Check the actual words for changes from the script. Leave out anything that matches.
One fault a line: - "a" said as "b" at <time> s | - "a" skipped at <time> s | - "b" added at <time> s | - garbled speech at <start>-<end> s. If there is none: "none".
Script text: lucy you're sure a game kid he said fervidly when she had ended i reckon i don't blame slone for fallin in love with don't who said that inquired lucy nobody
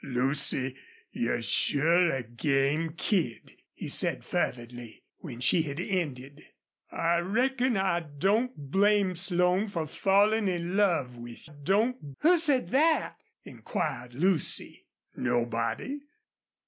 none